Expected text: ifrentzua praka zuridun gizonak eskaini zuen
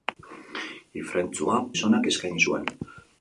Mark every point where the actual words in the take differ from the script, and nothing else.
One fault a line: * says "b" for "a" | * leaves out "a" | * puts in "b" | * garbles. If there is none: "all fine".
* leaves out "praka zuridun"